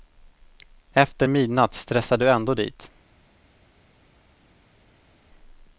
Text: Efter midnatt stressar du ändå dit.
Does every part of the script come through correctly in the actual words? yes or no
yes